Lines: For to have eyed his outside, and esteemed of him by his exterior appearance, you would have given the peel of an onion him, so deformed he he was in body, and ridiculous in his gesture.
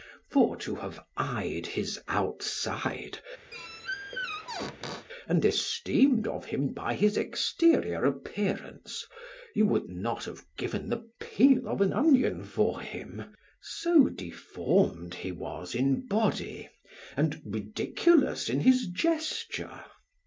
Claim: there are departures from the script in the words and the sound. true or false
true